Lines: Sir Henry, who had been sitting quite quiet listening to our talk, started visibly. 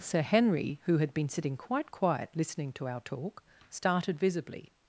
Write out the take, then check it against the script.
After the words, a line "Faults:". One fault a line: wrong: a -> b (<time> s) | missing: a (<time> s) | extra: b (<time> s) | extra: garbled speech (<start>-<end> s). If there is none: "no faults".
Sir Henry, who had been sitting quite quiet listening to our talk, started visibly.
Faults:
no faults